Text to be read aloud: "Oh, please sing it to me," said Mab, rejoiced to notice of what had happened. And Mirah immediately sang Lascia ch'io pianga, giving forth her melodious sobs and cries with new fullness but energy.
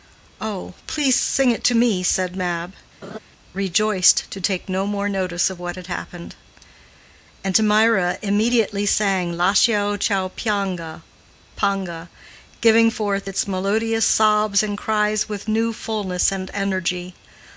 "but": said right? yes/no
no